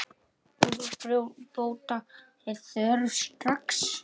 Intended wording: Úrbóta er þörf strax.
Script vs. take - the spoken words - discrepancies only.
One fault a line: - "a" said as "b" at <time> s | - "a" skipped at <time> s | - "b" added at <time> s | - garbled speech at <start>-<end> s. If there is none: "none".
none